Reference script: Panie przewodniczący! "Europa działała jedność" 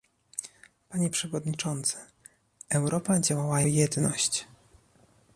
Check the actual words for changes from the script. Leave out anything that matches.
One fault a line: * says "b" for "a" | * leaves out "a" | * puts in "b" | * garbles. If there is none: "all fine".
all fine